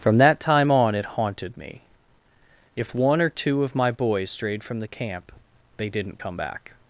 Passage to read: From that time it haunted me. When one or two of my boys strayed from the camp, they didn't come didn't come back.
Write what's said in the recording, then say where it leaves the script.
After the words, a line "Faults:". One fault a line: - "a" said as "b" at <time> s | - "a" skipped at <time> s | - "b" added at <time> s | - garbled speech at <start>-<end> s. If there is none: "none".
From that time on it haunted me. If one or two of my boys strayed from the camp, they didn't come back.
Faults:
- "on" added at 0.7 s
- "When" said as "If" at 2.8 s
- "didn't come" skipped at 6.4 s